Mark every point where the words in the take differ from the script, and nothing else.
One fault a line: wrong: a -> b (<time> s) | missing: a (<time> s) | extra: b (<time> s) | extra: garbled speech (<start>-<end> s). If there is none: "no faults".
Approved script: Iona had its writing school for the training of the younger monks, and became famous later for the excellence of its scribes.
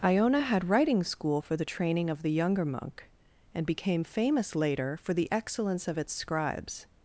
missing: its (0.7 s)
wrong: monks -> monk (2.6 s)